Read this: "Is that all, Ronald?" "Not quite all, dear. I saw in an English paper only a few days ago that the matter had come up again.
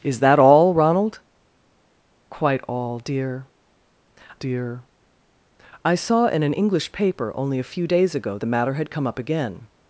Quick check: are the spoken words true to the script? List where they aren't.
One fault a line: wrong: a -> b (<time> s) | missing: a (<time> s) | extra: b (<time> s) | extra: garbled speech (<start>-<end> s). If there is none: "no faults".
missing: Not (1.2 s)
extra: dear (4.3 s)
missing: that (8.4 s)